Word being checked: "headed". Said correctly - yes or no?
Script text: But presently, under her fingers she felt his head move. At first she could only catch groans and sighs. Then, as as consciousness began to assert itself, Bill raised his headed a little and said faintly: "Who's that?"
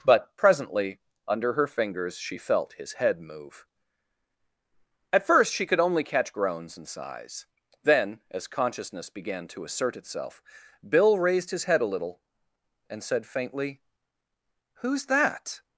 no